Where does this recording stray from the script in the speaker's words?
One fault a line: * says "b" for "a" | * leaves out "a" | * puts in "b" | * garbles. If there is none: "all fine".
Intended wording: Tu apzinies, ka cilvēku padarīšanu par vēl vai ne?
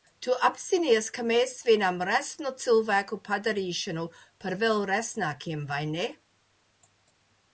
* puts in "mēs svinam resnu"
* puts in "resnākiem"